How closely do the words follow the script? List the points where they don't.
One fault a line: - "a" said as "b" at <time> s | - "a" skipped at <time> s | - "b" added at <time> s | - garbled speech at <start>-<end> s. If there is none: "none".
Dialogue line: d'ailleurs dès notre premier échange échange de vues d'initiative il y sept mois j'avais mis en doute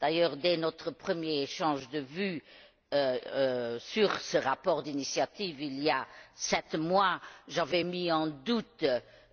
- "échange" skipped at 1.9 s
- "sur ce rapport" added at 3.8 s
- "a" added at 5.9 s